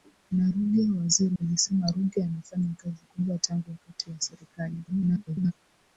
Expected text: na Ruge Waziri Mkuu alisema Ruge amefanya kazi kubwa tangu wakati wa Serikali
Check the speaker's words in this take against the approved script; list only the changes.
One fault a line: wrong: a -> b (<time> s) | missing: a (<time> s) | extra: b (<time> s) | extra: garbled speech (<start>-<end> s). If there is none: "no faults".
missing: Mkuu (1.4 s)
extra: garbled speech (4.9-5.5 s)